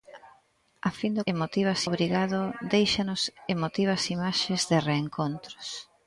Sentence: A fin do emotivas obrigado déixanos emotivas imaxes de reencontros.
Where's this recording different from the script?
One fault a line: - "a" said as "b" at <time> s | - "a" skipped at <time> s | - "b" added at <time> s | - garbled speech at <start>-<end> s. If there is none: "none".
none